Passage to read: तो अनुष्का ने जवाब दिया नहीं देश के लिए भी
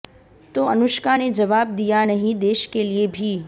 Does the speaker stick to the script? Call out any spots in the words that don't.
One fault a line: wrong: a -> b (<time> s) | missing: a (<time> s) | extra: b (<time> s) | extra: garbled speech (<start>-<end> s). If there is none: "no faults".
no faults